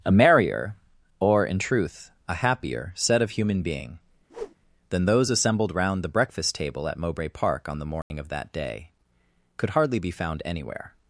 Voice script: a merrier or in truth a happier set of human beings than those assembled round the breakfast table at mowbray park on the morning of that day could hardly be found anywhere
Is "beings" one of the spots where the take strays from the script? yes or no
yes